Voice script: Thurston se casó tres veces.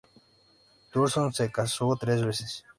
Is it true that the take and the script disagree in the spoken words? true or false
false